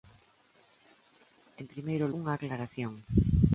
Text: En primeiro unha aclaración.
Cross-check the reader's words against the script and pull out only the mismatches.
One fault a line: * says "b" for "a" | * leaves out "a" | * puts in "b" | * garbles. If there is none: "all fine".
all fine